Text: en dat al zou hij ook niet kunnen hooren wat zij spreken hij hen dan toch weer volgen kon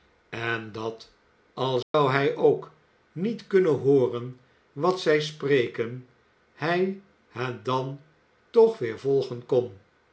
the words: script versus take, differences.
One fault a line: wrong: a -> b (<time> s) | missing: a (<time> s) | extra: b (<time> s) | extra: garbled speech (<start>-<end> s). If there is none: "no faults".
no faults